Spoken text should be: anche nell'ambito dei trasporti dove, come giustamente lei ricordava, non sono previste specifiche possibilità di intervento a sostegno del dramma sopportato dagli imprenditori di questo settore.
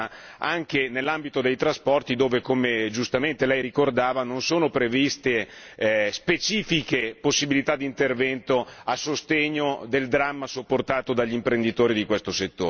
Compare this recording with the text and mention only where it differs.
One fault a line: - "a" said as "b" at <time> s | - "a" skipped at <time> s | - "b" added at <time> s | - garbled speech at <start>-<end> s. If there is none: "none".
none